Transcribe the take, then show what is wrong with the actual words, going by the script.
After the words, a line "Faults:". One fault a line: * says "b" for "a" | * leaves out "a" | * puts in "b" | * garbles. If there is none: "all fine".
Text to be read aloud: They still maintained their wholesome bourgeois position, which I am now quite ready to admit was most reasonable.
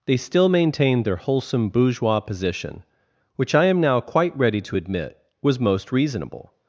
They still maintained their wholesome bourgeois position, which I am now quite ready to admit was most reasonable.
Faults:
all fine